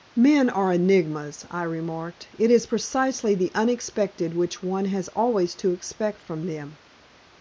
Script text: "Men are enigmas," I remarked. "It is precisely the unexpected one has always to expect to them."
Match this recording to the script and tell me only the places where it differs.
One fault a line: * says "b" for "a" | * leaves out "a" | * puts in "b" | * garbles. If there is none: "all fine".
* puts in "which"
* says "from" for "to"